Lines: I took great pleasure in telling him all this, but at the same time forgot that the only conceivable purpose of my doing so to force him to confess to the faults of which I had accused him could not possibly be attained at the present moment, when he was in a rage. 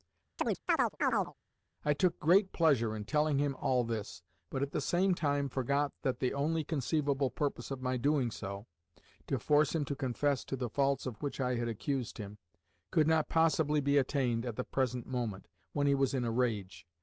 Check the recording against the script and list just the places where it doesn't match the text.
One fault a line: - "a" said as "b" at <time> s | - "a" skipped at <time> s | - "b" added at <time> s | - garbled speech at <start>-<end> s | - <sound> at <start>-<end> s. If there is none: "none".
- chirp at 0.4-1.3 s